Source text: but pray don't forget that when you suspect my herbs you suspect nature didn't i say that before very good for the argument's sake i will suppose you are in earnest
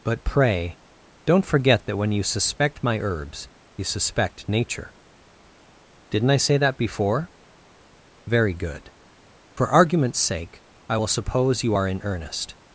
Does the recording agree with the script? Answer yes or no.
no